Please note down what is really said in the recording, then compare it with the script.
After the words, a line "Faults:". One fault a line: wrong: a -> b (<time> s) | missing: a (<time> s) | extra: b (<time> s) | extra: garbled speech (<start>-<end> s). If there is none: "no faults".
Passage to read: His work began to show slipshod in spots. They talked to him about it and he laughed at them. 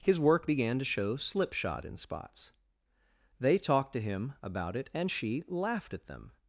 His work began to show slipshod in spots. They talked to him about it and she laughed at them.
Faults:
wrong: he -> she (5.1 s)